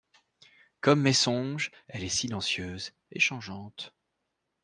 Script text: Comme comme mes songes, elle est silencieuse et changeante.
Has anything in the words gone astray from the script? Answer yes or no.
yes